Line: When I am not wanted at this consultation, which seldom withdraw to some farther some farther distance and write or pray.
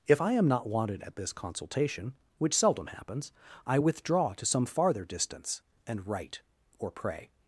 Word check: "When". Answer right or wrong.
wrong